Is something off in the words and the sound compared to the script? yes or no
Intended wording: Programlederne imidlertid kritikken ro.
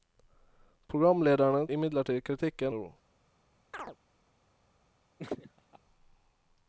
yes